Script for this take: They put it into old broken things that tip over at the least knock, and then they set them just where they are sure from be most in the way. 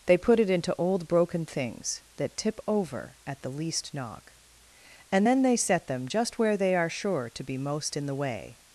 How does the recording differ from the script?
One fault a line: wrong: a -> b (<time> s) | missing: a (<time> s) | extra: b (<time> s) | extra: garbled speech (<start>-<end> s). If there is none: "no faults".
wrong: from -> to (7.3 s)